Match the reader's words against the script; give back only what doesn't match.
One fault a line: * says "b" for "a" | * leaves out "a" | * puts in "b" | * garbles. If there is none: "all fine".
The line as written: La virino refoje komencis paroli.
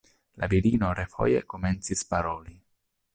all fine